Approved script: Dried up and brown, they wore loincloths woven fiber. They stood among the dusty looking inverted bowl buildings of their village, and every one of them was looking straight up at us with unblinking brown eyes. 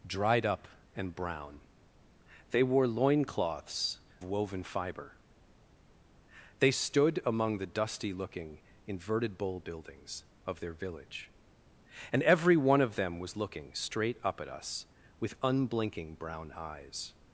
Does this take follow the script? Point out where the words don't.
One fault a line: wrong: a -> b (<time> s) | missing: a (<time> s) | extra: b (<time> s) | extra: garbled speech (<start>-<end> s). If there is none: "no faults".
no faults